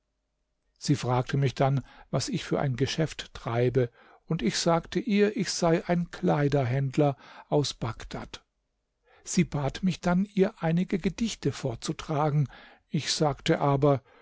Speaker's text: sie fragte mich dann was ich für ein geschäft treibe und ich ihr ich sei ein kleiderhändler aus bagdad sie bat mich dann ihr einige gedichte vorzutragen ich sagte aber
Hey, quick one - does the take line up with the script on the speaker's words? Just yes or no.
no